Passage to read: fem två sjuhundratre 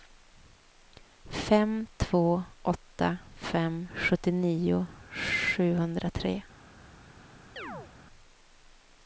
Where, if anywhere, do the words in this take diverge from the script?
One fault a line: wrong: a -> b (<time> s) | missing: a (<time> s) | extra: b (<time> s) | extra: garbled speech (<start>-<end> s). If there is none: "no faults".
extra: åtta fem sjuttionio (2.6 s)